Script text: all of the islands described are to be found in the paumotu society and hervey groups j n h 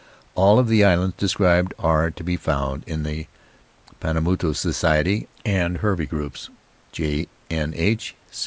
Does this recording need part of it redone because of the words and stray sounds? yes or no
no